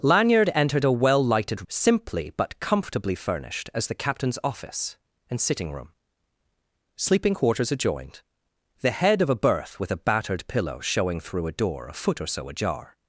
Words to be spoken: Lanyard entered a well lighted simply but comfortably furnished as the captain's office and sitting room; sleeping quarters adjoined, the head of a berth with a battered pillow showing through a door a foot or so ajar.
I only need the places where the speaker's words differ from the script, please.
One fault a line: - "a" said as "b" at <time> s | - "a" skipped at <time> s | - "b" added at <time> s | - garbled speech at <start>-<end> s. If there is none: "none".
none